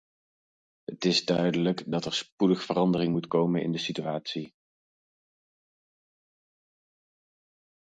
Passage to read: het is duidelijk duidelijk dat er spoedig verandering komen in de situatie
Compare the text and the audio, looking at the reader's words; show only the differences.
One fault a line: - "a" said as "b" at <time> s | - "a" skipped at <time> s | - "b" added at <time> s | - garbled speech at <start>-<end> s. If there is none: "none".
- "duidelijk" skipped at 1.9 s
- "moet" added at 3.1 s